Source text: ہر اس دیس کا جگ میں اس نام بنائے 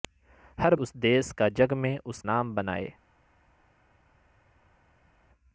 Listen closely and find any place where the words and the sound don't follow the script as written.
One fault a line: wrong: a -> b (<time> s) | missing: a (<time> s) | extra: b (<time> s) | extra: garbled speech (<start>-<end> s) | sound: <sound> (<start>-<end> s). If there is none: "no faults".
no faults